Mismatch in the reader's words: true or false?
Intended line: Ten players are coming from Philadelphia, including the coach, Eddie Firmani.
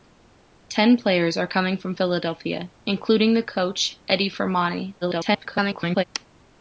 true